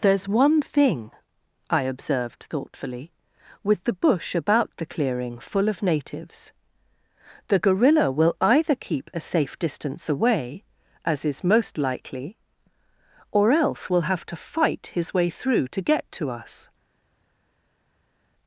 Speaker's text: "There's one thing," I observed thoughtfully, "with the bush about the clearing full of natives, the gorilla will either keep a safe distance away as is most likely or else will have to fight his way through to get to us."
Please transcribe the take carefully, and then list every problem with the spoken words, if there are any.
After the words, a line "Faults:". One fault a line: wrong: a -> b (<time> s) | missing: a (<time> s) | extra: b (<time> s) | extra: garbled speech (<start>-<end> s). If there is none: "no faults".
"There's one thing," I observed thoughtfully, "with the bush about the clearing full of natives, the gorilla will either keep a safe distance away as is most likely or else will have to fight his way through to get to us."
Faults:
no faults